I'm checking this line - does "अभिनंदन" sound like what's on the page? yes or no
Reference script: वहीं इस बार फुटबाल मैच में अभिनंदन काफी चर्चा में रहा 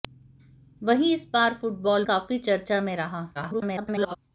no